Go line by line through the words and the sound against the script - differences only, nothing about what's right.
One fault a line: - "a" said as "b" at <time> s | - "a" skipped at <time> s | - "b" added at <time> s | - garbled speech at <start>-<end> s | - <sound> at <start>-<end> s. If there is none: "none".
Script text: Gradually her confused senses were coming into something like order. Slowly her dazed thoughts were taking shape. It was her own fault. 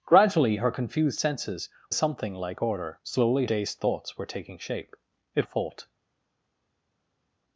- "were coming into" skipped at 1.7 s
- "her" skipped at 3.5 s
- "was her own" skipped at 5.5 s